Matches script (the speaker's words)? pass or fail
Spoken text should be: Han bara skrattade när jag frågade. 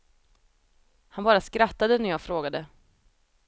pass